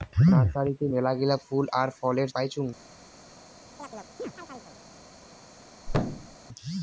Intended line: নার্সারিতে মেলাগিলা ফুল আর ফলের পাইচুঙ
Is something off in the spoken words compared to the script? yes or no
no